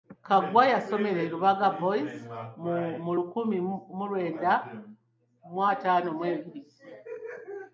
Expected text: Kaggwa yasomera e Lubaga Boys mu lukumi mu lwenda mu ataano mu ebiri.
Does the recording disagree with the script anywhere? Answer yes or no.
no